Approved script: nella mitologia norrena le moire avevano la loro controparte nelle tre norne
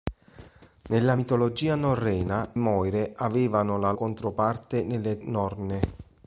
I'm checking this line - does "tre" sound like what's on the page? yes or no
no